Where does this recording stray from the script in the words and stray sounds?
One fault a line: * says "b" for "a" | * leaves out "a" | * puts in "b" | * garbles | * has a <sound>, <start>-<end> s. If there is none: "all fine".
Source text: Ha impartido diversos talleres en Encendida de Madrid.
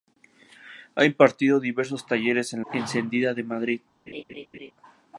* has a laugh, 4.1-4.7 s